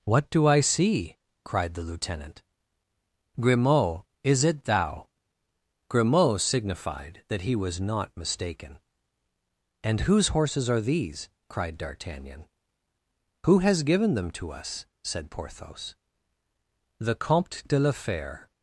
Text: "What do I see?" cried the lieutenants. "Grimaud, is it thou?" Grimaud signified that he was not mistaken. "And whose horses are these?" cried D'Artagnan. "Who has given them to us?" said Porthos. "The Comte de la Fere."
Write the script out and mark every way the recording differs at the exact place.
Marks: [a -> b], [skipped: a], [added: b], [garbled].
"What do I see?" cried the [lieutenants. -> lieutenant] "Grimaud, is it thou?" Grimaud signified that he was not mistaken. "And whose horses are these?" cried D'Artagnan. "Who has given them to us?" said Porthos. "The Comte de la Fere."